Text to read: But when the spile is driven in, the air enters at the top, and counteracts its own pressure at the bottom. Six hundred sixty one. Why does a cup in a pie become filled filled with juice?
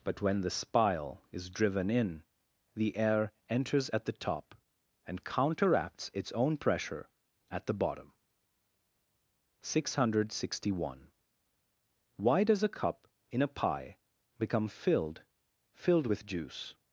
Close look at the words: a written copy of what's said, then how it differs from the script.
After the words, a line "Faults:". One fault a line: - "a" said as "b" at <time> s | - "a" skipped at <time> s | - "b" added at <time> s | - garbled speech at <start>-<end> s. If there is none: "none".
But when the spile is driven in, the air enters at the top, and counteracts its own pressure at the bottom. Six hundred sixty one. Why does a cup in a pie become filled filled with juice?
Faults:
none